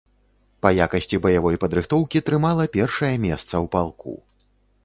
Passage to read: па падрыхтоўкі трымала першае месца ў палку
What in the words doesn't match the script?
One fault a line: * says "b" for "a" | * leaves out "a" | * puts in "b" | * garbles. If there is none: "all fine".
* puts in "якасці баявой"